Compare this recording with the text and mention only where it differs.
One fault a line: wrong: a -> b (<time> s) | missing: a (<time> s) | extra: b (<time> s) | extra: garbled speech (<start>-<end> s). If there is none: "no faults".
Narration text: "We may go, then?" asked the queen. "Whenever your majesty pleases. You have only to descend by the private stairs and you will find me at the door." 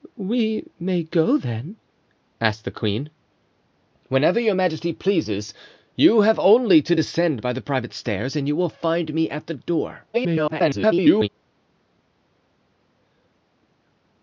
extra: garbled speech (10.1-11.3 s)